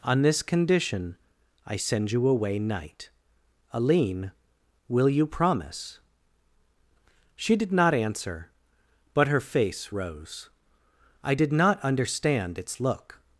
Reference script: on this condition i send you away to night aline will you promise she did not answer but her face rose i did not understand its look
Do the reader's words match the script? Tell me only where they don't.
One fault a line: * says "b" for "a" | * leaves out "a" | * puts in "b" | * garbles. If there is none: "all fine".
* leaves out "to"